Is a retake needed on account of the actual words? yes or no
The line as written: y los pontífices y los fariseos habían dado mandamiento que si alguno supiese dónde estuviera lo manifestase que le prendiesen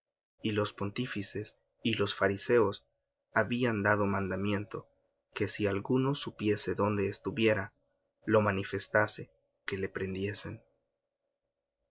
no